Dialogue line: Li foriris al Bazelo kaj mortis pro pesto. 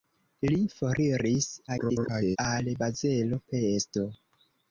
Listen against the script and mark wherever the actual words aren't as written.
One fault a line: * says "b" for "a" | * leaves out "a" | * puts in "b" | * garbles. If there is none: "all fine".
* garbles
* leaves out "kaj mortis pro"